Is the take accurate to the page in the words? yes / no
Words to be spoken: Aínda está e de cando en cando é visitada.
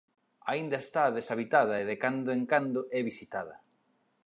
no